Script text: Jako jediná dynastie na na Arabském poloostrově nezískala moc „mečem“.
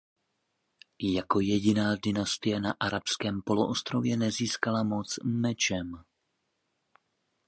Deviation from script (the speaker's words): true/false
true